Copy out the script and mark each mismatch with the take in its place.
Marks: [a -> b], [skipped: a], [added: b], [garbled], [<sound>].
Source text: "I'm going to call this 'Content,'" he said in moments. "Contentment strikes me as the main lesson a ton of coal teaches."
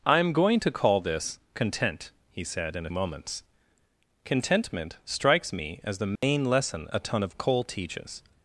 "I'm going to call this 'Content,'" he said in moments. "Contentment strikes me as the main [dropout] lesson a ton of coal teaches."